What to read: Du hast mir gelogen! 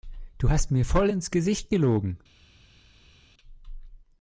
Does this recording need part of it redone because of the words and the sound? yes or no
yes